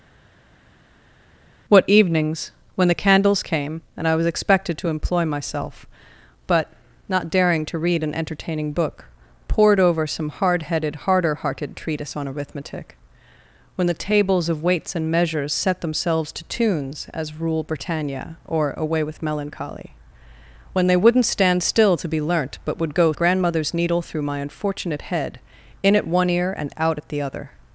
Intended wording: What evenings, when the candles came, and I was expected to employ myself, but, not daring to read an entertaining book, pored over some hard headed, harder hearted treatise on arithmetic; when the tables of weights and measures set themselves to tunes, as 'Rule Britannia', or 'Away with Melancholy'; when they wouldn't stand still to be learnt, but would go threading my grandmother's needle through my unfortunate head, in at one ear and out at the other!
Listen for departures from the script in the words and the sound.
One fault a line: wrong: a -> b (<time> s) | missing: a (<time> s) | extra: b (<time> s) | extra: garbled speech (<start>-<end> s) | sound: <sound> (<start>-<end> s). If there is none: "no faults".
missing: threading my (23.1 s)